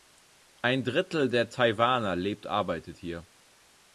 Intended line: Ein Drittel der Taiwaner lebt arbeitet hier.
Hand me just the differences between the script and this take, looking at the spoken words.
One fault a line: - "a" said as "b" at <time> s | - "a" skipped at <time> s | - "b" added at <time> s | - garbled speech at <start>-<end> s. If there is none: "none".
none